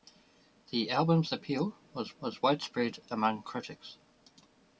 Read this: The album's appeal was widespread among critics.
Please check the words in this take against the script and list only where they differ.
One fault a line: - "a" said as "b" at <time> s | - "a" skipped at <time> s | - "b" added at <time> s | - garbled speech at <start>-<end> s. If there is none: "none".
- "was" added at 2.2 s